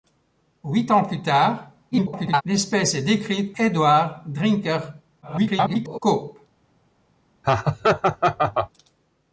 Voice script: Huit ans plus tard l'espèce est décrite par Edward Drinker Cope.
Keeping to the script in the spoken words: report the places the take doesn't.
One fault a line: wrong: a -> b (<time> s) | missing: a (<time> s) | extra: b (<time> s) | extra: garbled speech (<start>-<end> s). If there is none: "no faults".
extra: garbled speech (1.9-2.4 s)
missing: par (3.5 s)
extra: garbled speech (5.2-6.0 s)